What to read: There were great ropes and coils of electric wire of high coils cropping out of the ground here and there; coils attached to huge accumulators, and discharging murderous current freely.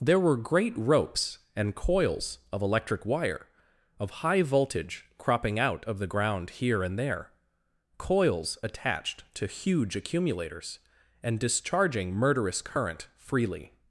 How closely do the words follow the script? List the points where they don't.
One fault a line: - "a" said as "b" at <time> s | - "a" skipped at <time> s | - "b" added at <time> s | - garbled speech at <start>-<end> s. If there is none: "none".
- "coils" said as "voltage" at 4.4 s